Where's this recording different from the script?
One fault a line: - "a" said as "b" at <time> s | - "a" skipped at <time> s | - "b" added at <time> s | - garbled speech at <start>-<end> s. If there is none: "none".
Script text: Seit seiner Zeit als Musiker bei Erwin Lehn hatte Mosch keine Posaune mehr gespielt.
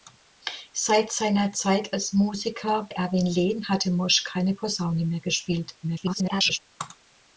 - "bei" skipped at 2.9 s
- garbled speech at 5.8-6.6 s